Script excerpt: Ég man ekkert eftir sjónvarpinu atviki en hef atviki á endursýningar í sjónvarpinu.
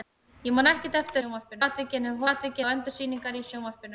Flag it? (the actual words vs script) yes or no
no